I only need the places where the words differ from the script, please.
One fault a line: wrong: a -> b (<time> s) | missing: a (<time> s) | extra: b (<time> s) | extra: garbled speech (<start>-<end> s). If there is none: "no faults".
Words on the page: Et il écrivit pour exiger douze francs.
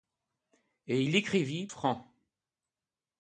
missing: pour exiger douze (1.7 s)